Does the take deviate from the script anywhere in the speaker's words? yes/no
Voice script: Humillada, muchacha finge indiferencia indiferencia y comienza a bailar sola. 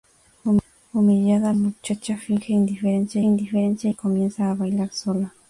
no